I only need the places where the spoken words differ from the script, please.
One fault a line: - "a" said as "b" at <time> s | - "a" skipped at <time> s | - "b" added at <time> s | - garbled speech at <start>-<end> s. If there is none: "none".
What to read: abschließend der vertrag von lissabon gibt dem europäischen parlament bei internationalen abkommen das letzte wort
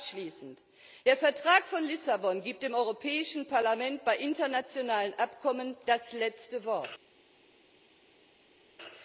none